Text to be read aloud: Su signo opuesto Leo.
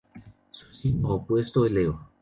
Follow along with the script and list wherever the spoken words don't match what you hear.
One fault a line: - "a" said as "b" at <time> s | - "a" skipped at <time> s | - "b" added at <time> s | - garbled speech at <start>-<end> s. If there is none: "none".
none